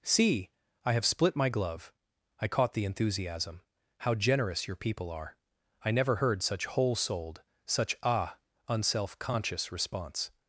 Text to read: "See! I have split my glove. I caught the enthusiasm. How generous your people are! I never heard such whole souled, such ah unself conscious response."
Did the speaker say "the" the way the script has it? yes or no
yes